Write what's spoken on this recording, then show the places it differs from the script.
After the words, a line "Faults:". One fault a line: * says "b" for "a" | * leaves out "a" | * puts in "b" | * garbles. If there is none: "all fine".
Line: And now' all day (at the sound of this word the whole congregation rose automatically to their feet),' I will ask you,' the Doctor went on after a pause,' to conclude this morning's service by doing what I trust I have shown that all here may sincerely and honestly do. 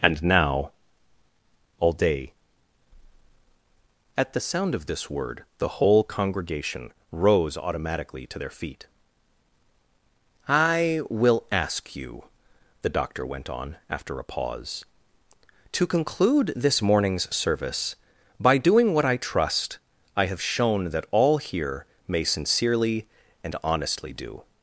And now' all day (at the sound of this word the whole congregation rose automatically to their feet),' I will ask you,' the Doctor went on after a pause,' to conclude this morning's service by doing what I trust I have shown that all here may sincerely and honestly do.
Faults:
all fine